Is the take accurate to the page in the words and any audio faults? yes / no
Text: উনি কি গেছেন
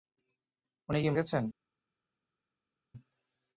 yes